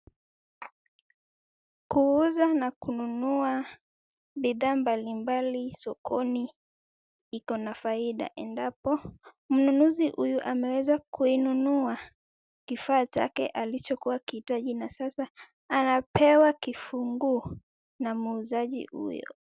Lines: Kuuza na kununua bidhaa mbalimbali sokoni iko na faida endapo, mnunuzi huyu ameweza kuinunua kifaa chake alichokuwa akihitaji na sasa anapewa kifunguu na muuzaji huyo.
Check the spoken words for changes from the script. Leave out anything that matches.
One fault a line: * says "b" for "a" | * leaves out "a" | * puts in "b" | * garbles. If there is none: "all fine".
all fine